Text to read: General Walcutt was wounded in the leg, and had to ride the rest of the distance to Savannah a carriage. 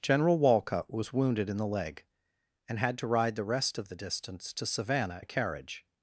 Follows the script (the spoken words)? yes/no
yes